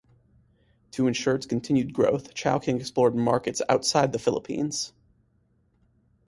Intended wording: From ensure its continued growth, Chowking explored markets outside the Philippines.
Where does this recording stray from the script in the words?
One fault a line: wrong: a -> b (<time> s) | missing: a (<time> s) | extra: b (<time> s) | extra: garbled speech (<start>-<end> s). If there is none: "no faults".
wrong: From -> To (0.9 s)